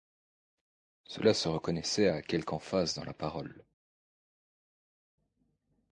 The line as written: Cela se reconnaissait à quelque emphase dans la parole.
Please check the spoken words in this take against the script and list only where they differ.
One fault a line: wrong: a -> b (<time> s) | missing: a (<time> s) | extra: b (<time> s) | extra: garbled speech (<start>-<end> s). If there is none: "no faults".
no faults